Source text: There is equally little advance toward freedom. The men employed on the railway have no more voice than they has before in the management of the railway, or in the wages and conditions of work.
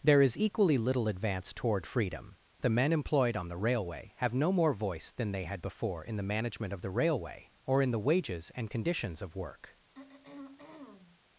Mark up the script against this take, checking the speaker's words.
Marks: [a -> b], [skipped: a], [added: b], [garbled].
There is equally little advance toward freedom. The men employed on the railway have no more voice than they [has -> had] before in the management of the railway, or in the wages and conditions of work.